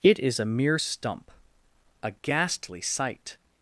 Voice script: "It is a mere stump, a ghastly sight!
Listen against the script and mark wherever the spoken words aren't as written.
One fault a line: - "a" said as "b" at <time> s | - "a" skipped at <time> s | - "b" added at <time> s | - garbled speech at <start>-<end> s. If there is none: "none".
none